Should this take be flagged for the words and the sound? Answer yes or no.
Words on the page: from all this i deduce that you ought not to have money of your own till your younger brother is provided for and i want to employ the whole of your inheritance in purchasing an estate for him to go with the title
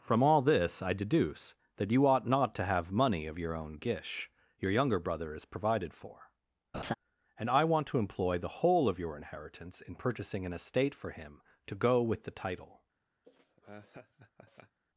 yes